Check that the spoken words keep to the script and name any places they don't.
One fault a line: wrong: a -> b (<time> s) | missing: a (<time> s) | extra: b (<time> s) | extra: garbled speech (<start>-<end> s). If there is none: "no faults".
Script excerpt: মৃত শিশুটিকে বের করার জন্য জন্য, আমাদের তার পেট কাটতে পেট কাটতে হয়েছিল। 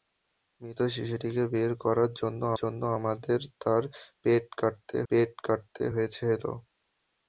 no faults